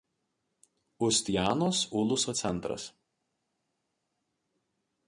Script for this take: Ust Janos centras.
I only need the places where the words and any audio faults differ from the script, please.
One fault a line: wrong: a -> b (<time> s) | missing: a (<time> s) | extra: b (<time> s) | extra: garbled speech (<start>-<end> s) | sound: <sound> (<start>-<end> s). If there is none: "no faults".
extra: uluso (1.9 s)